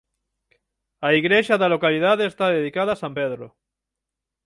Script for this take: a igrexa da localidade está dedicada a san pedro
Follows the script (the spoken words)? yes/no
yes